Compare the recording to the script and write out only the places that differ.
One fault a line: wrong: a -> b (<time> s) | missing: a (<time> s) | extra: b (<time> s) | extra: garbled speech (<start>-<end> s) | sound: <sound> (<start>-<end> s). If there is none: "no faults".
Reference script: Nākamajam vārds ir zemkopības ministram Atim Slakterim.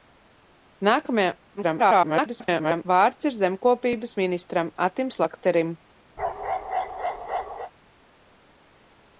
extra: garbled speech (1.6-2.8 s)
sound: bark (6.2-7.7 s)